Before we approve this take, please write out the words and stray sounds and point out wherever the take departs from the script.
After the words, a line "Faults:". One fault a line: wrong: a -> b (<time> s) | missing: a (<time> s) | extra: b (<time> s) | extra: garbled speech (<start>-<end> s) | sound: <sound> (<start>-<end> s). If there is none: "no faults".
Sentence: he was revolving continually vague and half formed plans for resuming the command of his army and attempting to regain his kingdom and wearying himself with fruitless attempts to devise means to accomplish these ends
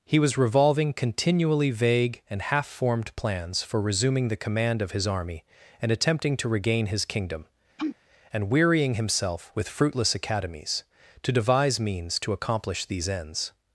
he was revolving continually vague and half formed plans for resuming the command of his army and attempting to regain his kingdom and wearying himself with fruitless academies to devise means to accomplish these ends
Faults:
sound: sneeze (7.8-8.0 s)
wrong: attempts -> academies (10.2 s)